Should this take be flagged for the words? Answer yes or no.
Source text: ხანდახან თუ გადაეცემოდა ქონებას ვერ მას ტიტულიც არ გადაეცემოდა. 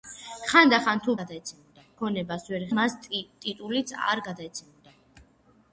no